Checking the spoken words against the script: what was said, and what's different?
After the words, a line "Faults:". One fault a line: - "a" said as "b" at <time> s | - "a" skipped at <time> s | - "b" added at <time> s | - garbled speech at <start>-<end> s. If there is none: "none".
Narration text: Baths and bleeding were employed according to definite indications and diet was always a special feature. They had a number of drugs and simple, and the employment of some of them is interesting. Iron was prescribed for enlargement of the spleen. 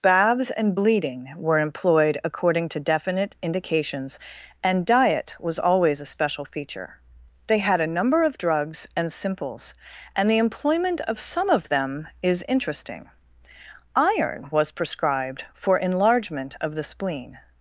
Baths and bleeding were employed according to definite indications and diet was always a special feature. They had a number of drugs and simples, and the employment of some of them is interesting. Iron was prescribed for enlargement of the spleen.
Faults:
- "simple" said as "simples" at 9.1 s